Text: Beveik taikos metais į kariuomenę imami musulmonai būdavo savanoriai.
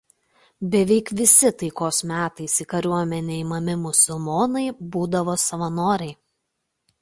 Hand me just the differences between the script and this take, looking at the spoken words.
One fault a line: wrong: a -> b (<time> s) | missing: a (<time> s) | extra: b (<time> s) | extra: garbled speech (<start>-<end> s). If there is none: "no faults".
extra: visi (1.2 s)